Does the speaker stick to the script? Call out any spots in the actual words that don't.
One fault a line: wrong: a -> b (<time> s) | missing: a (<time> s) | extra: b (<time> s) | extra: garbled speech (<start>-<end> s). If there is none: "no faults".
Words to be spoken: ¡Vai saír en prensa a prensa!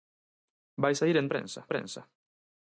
no faults